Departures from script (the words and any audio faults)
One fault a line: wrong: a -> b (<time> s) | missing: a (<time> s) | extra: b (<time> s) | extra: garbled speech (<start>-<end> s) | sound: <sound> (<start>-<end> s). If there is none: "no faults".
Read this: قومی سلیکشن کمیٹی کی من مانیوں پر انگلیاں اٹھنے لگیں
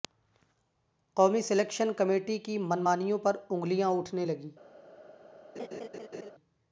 sound: laugh (5.6-6.3 s)